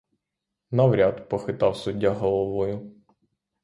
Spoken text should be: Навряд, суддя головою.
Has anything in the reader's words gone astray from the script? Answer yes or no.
yes